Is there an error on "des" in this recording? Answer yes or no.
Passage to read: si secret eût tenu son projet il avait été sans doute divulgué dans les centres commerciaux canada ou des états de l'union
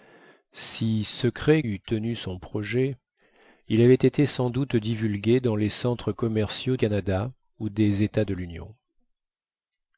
no